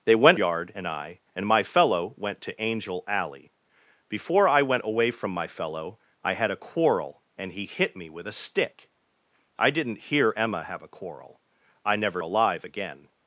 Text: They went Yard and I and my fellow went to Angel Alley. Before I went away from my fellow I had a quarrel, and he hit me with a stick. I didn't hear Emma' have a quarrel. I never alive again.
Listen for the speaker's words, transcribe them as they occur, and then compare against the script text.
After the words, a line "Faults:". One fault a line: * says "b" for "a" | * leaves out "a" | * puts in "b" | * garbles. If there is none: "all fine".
They went Yard and I and my fellow went to Angel Alley. Before I went away from my fellow I had a quarrel, and he hit me with a stick. I didn't hear Emma' have a quarrel. I never alive again.
Faults:
all fine